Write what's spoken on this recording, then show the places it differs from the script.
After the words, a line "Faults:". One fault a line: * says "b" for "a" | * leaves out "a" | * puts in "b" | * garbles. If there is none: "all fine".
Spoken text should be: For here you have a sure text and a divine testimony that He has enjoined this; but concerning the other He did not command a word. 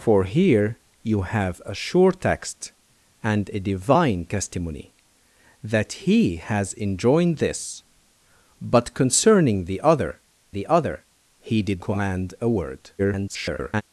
For here you have a sure text and a divine testimony that He has enjoined this; but concerning the other the other He did command a word. [garbled]
Faults:
* puts in "the other"
* leaves out "not"
* garbles